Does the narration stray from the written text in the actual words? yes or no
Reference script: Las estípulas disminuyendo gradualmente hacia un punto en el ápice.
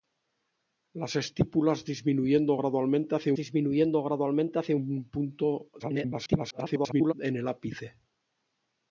yes